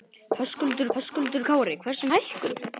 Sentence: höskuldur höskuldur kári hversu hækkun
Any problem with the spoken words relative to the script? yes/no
no